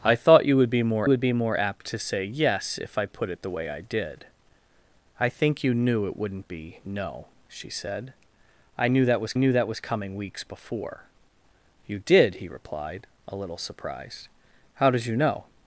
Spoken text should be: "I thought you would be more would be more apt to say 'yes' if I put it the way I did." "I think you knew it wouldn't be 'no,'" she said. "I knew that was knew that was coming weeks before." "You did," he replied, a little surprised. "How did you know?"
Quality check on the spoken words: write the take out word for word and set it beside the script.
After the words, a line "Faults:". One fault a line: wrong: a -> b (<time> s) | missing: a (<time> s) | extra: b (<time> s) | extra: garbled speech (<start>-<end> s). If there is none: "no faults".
"I thought you would be more would be more apt to say 'yes' if I put it the way I did." "I think you knew it wouldn't be 'no,'" she said. "I knew that was knew that was coming weeks before." "You did," he replied, a little surprised. "How did you know?"
Faults:
no faults